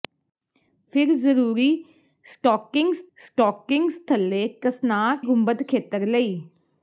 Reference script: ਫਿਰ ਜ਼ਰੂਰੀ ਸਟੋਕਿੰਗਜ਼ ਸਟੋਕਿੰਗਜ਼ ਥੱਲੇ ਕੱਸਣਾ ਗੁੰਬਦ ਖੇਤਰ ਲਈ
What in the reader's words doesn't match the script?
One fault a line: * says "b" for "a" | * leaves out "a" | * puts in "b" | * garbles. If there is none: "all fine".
all fine